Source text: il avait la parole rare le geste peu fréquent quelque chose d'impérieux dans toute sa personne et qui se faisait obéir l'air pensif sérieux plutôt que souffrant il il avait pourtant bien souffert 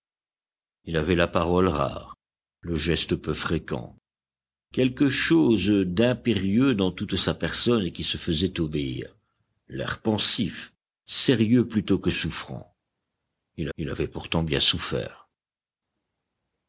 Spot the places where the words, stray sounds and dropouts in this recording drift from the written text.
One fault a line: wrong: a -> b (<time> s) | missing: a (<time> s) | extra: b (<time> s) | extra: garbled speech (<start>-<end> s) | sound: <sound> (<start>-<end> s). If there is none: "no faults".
no faults